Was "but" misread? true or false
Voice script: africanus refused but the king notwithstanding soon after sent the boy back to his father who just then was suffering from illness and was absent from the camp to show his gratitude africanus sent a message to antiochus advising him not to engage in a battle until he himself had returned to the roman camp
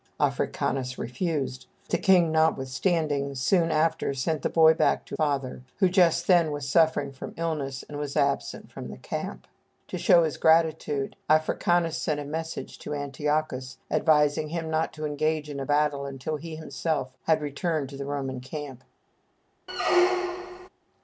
true